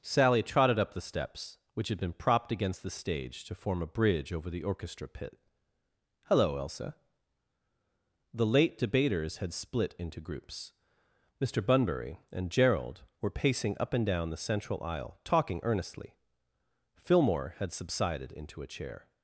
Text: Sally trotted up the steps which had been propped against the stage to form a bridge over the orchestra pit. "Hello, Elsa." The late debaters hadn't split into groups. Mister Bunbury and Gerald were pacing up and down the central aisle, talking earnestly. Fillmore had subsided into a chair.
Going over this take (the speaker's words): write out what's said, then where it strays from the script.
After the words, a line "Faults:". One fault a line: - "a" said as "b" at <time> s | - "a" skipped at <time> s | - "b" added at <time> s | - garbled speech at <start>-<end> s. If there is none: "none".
Sally trotted up the steps which had been propped against the stage to form a bridge over the orchestra pit. "Hello, Elsa." The late debaters had split into groups. Mister Bunbury and Gerald were pacing up and down the central aisle, talking earnestly. Fillmore had subsided into a chair.
Faults:
- "hadn't" said as "had" at 9.4 s